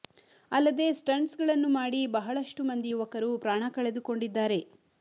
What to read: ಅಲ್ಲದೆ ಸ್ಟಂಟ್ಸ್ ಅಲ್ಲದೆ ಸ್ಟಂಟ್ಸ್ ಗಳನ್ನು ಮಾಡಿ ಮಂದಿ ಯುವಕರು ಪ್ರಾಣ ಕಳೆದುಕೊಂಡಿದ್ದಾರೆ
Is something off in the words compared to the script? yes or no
yes